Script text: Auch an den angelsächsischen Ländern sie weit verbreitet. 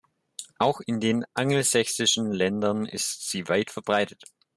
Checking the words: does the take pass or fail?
fail